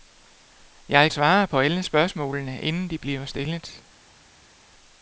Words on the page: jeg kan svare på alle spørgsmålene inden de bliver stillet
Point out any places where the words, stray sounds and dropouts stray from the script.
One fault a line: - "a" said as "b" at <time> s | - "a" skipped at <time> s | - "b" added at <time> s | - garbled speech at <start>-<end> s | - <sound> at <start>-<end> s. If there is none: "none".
- "kan" skipped at 1.1 s